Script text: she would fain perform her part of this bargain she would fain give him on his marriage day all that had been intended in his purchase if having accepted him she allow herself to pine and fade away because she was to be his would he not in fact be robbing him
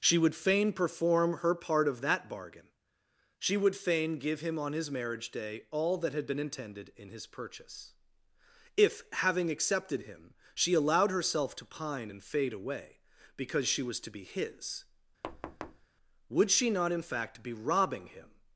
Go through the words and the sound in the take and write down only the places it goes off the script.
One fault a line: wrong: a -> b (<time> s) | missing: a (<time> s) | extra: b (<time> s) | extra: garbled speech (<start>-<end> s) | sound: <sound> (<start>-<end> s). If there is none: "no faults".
wrong: this -> that (2.0 s)
wrong: allow -> allowed (10.7 s)
sound: thud (15.2-15.9 s)
wrong: he -> she (16.5 s)